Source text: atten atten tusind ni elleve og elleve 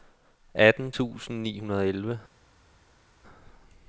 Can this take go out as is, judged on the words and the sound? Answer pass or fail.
fail